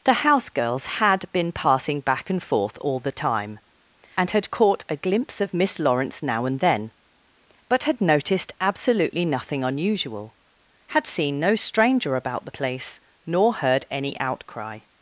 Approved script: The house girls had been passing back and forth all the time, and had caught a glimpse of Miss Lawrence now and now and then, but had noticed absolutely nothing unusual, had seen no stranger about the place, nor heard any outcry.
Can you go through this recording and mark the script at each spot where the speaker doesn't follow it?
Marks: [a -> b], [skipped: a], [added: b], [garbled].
The house girls had been passing back and forth all the time, and had caught a glimpse of Miss Lawrence now and [skipped: now and] then, but had noticed absolutely nothing unusual, had seen no stranger about the place, nor heard any outcry.